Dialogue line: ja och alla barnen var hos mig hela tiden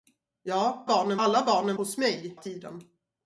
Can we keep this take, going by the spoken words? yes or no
no